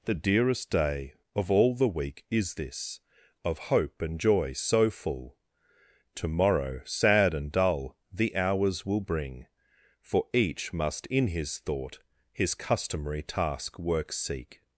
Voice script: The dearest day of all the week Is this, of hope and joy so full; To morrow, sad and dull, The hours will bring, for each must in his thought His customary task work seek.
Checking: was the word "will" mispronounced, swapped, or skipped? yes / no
no